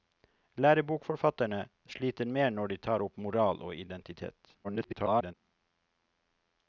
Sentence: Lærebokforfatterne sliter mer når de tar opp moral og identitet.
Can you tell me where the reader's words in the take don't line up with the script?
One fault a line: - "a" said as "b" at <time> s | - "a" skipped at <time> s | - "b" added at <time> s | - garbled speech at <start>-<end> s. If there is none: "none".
- garbled speech at 4.6-5.3 s